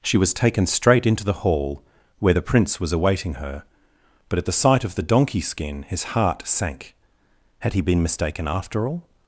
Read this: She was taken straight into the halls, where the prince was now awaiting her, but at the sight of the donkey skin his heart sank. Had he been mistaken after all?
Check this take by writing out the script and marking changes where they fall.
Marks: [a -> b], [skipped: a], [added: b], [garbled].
She was taken straight into the [halls, -> hall] where the prince was [skipped: now] awaiting her, but at the sight of the donkey skin his heart sank. Had he been mistaken after all?